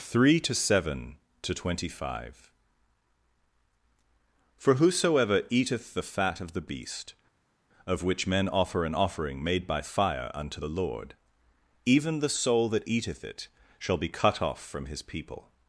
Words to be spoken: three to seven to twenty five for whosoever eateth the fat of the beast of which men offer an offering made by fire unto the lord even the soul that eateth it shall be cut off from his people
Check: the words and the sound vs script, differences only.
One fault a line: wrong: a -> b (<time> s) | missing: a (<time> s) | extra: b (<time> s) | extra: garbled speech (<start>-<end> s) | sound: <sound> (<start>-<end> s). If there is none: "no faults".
no faults